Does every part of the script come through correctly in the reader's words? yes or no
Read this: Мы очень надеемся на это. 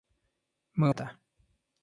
no